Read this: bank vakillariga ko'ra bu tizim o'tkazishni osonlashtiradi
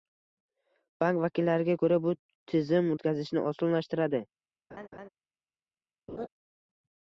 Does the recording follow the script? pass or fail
pass